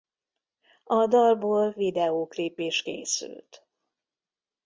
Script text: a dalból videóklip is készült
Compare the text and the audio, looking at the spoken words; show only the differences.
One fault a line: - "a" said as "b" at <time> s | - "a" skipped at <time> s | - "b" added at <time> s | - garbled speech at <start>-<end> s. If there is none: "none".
none